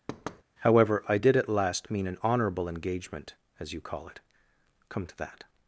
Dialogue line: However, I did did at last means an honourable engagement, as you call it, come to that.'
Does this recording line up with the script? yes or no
no